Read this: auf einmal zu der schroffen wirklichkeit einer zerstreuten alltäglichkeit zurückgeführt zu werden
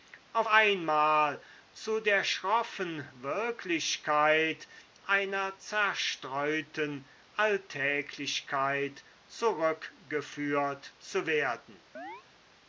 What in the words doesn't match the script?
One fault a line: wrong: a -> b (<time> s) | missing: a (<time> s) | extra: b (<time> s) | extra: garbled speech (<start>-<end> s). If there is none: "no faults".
no faults